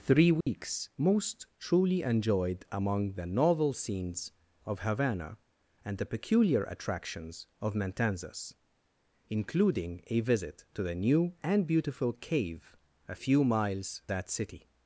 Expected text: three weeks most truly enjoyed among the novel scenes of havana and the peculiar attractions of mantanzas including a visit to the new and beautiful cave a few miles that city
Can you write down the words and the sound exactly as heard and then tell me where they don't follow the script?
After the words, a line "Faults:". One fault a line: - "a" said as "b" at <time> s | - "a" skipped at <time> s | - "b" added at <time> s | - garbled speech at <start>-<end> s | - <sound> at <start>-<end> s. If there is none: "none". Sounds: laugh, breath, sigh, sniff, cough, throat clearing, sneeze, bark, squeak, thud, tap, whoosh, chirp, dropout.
three weeks most truly enjoyed among the novel scenes of havana and the peculiar attractions of mantanzas including a visit to the new and beautiful cave a few miles that city
Faults:
- dropout at 0.4-0.5 s